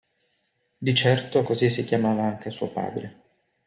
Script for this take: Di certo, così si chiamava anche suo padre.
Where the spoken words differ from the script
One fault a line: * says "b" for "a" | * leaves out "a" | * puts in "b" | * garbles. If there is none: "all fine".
all fine